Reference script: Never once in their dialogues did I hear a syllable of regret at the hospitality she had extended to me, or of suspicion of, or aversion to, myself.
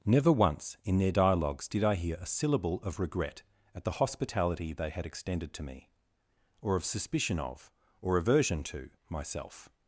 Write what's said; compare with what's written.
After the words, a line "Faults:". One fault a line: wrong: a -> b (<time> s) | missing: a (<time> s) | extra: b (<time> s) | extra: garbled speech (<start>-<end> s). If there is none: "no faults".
Never once in their dialogues did I hear a syllable of regret at the hospitality they had extended to me, or of suspicion of, or aversion to, myself.
Faults:
wrong: she -> they (4.7 s)